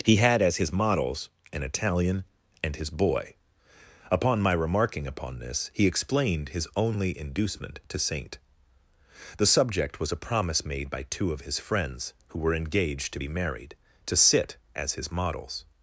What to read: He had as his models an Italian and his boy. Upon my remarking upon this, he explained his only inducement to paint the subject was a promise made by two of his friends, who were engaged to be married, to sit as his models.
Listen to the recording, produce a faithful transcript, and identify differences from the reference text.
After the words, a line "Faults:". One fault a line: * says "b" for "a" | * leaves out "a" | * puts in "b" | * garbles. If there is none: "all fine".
He had as his models an Italian and his boy. Upon my remarking upon this, he explained his only inducement to saint the subject was a promise made by two of his friends, who were engaged to be married, to sit as his models.
Faults:
* says "saint" for "paint"